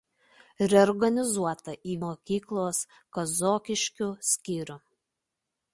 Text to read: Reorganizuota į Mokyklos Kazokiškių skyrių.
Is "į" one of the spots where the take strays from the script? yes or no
no